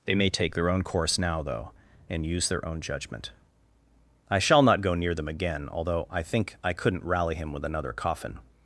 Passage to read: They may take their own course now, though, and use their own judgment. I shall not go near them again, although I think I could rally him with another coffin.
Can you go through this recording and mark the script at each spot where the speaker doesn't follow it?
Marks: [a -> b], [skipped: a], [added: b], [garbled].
They may take their own course now, though, and use their own judgment. I shall not go near them again, although I think I [could -> couldn't] rally him with another coffin.